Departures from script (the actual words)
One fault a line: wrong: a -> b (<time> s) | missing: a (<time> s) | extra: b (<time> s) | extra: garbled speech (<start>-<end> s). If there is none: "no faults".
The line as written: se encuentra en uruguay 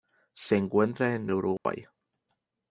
no faults